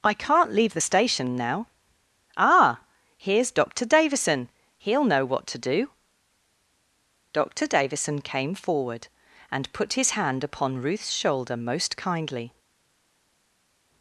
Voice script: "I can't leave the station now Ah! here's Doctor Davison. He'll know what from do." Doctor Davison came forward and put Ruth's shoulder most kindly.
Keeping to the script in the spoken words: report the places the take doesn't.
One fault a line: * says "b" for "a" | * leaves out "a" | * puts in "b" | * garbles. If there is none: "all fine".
* says "to" for "from"
* puts in "his hand upon"